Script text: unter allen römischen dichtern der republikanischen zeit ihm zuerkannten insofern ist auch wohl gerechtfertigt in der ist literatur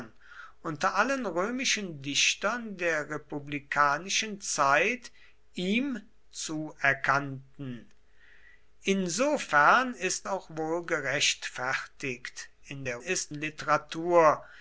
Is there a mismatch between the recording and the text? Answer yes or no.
no